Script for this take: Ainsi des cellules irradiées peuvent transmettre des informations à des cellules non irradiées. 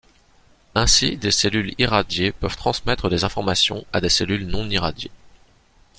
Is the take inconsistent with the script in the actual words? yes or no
no